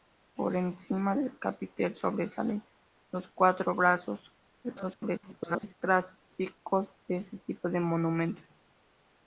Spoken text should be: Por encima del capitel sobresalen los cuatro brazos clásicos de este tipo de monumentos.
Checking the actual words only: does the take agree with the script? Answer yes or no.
no